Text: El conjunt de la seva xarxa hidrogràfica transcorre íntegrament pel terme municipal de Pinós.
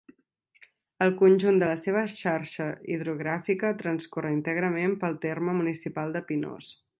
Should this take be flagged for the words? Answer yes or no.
no